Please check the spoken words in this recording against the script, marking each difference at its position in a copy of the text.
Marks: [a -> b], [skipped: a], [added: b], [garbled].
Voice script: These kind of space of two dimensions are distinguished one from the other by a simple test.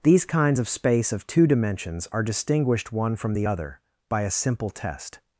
These [kind -> kinds] of space of two dimensions are distinguished one from the other by a simple test.